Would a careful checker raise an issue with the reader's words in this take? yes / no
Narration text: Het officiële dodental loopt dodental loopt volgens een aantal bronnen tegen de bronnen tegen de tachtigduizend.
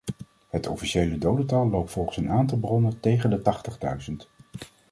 yes